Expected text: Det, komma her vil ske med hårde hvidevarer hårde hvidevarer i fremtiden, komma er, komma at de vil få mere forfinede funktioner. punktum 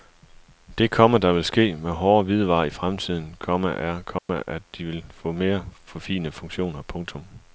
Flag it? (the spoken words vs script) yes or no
yes